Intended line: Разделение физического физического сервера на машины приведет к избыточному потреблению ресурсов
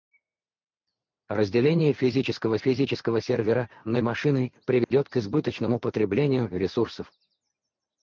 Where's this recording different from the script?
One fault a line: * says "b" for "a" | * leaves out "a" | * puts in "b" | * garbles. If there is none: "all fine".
all fine